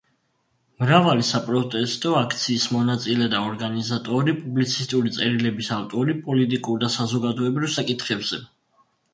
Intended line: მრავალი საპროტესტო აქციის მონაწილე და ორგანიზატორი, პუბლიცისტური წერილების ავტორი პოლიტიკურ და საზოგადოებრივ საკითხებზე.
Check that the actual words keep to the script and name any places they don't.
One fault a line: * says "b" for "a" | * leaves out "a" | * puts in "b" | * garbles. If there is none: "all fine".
all fine